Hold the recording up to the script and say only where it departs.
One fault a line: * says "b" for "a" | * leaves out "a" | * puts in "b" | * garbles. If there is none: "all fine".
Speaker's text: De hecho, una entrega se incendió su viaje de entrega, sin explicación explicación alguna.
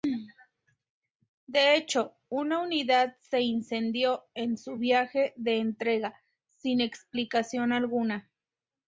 * says "unidad" for "entrega"
* puts in "en"
* leaves out "explicación"